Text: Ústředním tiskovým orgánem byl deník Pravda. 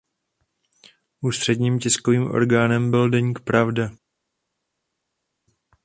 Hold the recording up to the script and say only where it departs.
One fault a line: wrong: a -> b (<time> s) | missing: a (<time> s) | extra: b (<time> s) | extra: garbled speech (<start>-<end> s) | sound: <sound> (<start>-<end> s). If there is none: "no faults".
no faults